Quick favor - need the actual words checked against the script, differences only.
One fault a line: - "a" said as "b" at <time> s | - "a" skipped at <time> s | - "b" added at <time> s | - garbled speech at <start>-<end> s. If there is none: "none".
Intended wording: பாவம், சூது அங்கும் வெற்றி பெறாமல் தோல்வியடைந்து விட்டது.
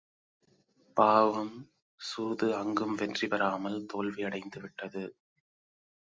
none